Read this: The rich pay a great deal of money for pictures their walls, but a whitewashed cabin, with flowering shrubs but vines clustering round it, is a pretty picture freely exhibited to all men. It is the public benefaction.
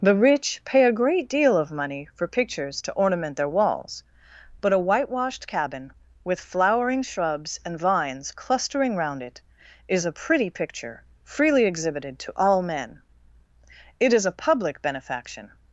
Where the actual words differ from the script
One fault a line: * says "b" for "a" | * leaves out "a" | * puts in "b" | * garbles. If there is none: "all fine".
* puts in "to ornament"
* says "and" for "but"
* says "a" for "the"